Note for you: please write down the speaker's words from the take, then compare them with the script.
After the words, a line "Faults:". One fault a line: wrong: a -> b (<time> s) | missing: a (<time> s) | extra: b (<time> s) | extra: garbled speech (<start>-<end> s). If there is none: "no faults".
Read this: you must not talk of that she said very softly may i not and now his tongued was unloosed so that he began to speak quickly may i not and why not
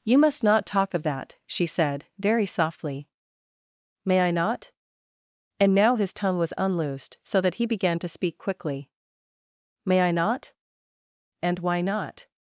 you must not talk of that she said very softly may i not and now his tongue was unloosed so that he began to speak quickly may i not and why not
Faults:
wrong: tongued -> tongue (6.1 s)